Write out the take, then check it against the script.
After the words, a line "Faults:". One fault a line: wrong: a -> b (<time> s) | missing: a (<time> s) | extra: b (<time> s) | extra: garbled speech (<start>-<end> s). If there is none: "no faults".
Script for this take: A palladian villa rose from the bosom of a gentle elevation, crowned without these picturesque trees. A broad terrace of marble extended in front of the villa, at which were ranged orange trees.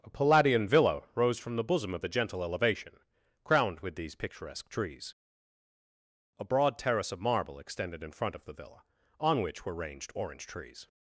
A palladian villa rose from the bosom of a gentle elevation, crowned with these picturesque trees. A broad terrace of marble extended in front of the villa, on which were ranged orange trees.
Faults:
wrong: without -> with (3.8 s)
wrong: at -> on (9.2 s)